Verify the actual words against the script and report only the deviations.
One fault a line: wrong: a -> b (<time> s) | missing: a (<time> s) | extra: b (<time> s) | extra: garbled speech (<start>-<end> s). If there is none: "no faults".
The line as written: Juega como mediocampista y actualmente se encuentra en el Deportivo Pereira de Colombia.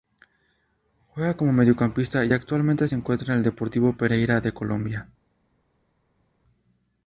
no faults